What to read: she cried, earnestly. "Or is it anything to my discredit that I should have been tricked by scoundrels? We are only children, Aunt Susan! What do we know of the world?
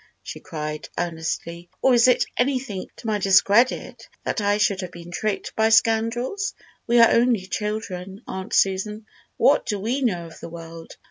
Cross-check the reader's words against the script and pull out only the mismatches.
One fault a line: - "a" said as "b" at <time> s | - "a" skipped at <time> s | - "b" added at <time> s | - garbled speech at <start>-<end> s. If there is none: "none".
none